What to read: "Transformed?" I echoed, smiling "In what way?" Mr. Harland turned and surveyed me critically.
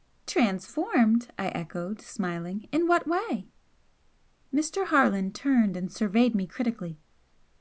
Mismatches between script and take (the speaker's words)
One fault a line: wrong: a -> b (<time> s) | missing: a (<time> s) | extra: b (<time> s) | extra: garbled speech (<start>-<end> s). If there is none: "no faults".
no faults